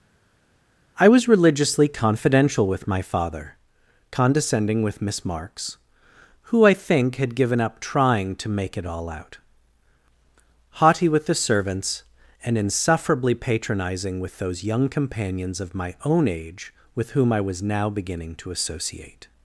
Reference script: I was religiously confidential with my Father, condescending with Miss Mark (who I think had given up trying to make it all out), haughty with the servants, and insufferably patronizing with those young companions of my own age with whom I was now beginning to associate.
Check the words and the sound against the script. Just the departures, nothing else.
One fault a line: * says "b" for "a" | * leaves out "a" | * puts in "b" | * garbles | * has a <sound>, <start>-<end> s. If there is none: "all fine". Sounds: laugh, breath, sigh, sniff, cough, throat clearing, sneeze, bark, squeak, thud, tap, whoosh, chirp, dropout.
* says "Marks" for "Mark"